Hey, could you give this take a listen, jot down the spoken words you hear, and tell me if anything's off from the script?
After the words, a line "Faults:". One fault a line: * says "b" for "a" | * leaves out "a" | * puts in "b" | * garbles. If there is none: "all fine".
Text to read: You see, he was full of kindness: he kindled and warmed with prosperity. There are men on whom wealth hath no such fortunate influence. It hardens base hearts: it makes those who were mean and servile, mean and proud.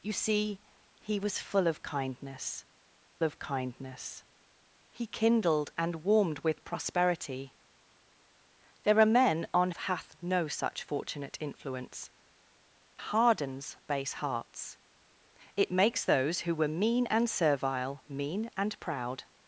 You see, he was full of kindness of kindness: he kindled and warmed with prosperity. There are men on hath no such fortunate influence. Hardens base hearts: it makes those who were mean and servile, mean and proud.
Faults:
* puts in "of kindness"
* leaves out "whom wealth"
* leaves out "It"